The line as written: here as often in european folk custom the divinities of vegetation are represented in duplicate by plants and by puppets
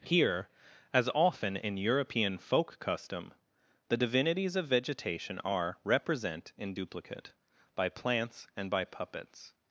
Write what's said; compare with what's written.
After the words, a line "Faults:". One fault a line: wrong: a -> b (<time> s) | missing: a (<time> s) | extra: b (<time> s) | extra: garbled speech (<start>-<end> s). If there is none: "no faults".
here as often in european folk custom the divinities of vegetation are represent in duplicate by plants and by puppets
Faults:
wrong: represented -> represent (5.8 s)